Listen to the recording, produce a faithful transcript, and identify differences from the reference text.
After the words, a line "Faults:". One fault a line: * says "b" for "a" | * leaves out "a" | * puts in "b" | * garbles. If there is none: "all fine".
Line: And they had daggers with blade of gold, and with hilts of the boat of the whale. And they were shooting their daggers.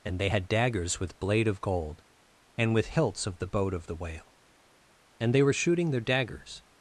And they had daggers with blade of gold, and with hilts of the boat of the whale. And they were shooting their daggers.
Faults:
all fine